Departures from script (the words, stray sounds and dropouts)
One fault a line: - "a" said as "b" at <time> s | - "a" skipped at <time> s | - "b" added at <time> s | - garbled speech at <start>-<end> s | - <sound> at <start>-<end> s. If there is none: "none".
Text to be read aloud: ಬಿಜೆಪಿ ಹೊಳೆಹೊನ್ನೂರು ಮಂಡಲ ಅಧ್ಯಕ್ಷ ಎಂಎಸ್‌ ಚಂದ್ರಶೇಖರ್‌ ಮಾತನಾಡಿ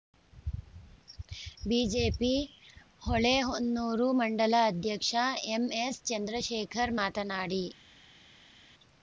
none